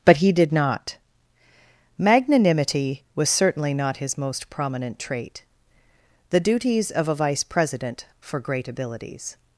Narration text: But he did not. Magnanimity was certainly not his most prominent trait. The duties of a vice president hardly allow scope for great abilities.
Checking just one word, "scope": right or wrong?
wrong